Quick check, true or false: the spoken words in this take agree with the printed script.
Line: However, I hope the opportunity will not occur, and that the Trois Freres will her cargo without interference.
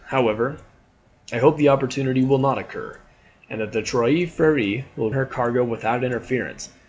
true